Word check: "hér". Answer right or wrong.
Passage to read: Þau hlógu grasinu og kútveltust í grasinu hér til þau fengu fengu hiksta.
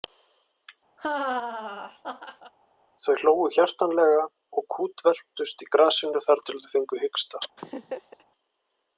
wrong